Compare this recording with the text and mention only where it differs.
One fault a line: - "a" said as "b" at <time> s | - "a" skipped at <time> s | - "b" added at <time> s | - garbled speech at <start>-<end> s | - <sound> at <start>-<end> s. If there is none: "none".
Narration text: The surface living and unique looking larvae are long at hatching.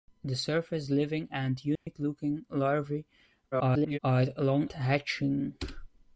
- dropout at 1.8-1.9 s
- garbled speech at 3.5-4.0 s
- "at" skipped at 4.7 s